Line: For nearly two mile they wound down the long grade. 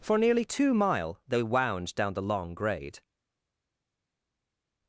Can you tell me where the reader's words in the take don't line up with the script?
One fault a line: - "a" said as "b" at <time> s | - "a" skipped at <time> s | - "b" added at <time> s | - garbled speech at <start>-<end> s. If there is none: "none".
none